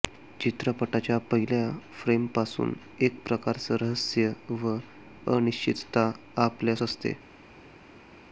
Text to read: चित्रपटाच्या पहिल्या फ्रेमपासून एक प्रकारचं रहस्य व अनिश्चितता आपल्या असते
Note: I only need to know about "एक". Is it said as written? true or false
true